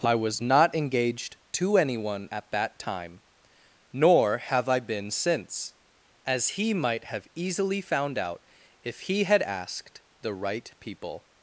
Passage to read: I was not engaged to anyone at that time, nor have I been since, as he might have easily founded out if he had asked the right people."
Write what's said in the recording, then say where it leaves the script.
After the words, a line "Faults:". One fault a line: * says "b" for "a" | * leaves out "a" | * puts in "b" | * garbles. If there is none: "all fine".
I was not engaged to anyone at that time, nor have I been since, as he might have easily found out if he had asked the right people."
Faults:
* says "found" for "founded"